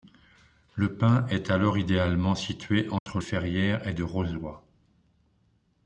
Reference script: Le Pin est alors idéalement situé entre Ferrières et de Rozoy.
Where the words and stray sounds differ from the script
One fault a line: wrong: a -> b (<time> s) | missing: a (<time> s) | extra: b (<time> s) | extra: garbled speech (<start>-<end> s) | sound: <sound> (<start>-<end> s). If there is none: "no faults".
sound: dropout (3.0-3.1 s)